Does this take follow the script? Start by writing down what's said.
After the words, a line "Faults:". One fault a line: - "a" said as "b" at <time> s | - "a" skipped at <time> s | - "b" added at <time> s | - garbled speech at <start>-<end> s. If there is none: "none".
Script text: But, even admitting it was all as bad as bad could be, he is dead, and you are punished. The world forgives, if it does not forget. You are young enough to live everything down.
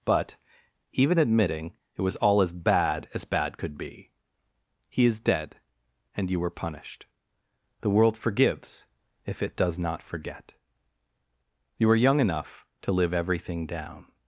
But, even admitting it was all as bad as bad could be, he is dead, and you were punished. The world forgives, if it does not forget. You are young enough to live everything down.
Faults:
- "are" said as "were" at 6.4 s